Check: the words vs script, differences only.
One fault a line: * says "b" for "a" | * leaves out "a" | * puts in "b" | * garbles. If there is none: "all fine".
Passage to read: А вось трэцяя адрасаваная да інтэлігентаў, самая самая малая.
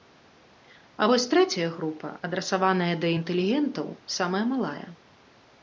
* puts in "група"
* leaves out "самая"